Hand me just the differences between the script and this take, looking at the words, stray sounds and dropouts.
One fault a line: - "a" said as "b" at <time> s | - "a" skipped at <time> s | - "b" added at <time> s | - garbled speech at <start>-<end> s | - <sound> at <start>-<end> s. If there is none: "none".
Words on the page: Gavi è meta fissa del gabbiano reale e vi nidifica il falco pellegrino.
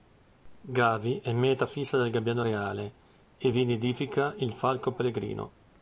none